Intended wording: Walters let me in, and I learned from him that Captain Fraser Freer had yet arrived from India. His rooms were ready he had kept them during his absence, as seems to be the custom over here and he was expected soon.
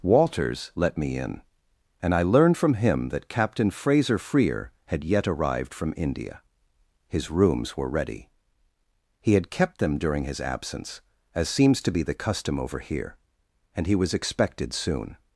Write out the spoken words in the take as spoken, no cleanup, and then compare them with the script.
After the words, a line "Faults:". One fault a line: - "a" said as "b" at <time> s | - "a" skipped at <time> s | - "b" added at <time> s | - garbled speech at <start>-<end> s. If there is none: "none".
Walters let me in, and I learned from him that Captain Fraser Freer had yet arrived from India. His rooms were ready he had kept them during his absence, as seems to be the custom over here and he was expected soon.
Faults:
none